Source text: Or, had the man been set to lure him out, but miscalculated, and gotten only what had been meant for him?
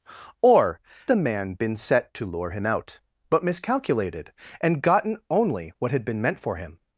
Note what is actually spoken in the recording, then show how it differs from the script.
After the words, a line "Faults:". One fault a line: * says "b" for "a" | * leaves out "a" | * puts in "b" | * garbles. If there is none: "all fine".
Or, the man been set to lure him out, but miscalculated, and gotten only what had been meant for him?
Faults:
* leaves out "had"